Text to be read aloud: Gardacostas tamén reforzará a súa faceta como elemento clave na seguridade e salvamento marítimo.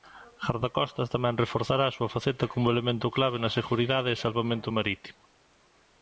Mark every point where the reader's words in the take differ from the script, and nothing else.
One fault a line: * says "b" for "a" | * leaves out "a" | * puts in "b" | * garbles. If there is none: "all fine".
all fine